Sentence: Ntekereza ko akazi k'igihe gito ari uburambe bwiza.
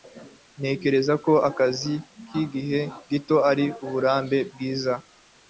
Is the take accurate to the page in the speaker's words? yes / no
yes